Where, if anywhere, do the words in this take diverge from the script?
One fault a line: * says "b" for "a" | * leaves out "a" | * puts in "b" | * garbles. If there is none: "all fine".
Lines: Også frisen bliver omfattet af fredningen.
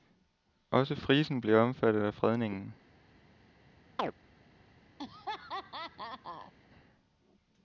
all fine